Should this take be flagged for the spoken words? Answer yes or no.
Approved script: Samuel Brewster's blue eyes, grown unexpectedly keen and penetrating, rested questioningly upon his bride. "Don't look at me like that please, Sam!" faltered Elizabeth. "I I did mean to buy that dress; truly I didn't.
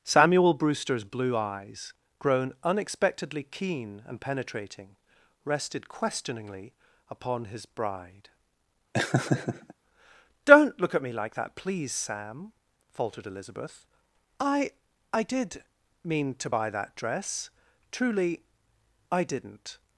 no